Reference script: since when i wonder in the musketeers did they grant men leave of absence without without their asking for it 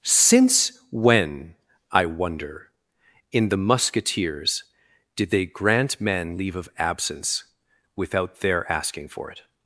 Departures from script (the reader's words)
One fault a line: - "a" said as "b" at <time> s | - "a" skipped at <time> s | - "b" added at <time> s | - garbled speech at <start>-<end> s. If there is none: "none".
- "without" skipped at 8.4 s